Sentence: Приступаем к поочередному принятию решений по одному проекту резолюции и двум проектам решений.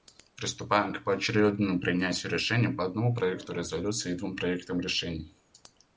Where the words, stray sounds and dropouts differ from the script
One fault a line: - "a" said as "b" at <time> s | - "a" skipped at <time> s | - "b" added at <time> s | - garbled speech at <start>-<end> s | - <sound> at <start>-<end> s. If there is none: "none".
none